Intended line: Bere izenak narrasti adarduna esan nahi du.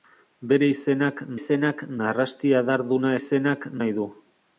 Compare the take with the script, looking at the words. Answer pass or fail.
fail